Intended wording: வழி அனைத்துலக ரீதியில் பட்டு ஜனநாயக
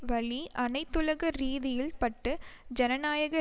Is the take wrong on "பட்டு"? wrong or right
right